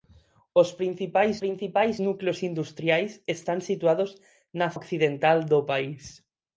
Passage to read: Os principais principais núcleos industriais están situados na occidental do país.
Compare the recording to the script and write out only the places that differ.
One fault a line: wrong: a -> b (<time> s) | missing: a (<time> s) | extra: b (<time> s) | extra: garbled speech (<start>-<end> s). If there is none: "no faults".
no faults